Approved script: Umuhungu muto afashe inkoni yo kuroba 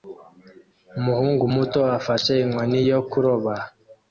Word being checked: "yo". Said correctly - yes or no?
yes